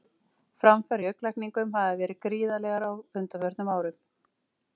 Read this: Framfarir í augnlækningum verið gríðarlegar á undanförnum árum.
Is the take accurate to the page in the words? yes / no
no